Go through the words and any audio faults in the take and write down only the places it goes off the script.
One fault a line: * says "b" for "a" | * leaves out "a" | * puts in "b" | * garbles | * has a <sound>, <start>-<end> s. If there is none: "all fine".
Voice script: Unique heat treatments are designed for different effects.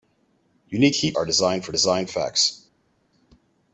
* leaves out "treatments"
* says "designed" for "different"